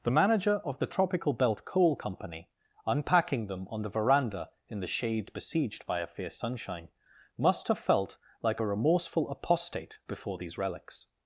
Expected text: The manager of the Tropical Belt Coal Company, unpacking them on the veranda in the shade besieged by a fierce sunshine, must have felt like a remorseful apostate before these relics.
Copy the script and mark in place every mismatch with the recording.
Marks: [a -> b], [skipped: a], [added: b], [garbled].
The manager of the Tropical Belt Coal Company, unpacking them on the veranda in the shade besieged by a fierce sunshine, must have felt like a remorseful apostate before these relics.